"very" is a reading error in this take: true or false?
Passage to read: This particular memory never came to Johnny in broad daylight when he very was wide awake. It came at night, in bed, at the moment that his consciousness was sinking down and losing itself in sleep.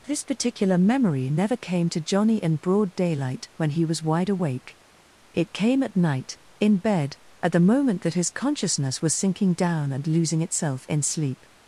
true